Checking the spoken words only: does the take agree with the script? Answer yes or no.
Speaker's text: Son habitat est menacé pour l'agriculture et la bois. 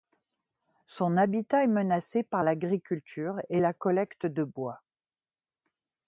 no